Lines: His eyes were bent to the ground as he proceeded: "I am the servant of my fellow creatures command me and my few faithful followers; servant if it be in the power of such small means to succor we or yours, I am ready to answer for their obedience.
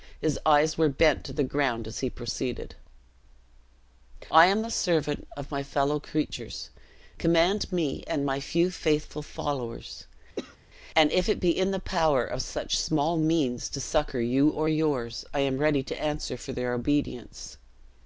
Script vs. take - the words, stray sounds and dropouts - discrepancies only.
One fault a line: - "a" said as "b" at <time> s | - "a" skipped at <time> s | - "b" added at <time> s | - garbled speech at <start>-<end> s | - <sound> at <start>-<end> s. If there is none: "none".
- cough at 10.4-10.6 s
- "servant" said as "and" at 11.0 s
- "we" said as "you" at 14.2 s